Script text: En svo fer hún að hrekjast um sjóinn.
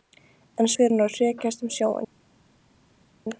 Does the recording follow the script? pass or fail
fail